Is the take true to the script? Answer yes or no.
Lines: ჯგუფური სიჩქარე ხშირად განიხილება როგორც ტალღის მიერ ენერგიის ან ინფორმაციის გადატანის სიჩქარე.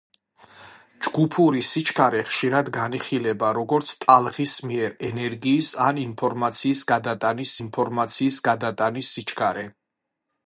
no